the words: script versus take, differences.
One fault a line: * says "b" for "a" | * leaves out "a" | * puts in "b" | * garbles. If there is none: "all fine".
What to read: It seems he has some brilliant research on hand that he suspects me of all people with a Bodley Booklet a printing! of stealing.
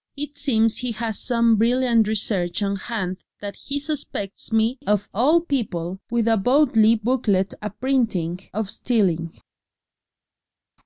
all fine